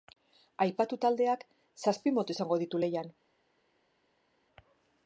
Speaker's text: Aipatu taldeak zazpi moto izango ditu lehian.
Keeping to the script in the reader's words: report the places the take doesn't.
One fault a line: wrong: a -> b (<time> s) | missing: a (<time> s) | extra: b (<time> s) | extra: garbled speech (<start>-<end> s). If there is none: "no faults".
no faults